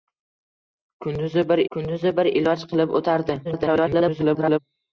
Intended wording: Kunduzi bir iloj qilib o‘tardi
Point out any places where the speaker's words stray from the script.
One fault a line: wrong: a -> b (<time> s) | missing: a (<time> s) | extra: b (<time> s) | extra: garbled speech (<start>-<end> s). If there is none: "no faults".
extra: kunduzi bir (1.8 s)
extra: garbled speech (3.4-4.6 s)